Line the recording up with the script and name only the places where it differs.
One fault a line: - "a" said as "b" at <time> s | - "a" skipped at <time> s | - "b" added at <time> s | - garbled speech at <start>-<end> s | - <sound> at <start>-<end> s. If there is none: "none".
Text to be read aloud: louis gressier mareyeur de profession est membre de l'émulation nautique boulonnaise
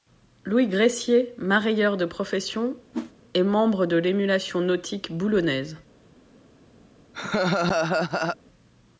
- whoosh at 2.9-3.1 s
- laugh at 7.1-8.4 s